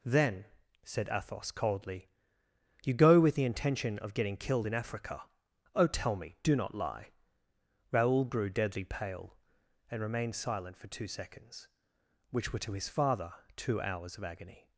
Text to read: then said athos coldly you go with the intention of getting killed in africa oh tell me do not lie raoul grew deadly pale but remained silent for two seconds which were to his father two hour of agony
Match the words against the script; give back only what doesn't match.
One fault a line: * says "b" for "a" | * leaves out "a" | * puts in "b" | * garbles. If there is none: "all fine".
* says "and" for "but"
* says "hours" for "hour"